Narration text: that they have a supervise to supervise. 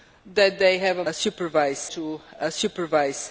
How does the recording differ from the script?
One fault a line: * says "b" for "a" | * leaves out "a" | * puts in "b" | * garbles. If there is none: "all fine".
all fine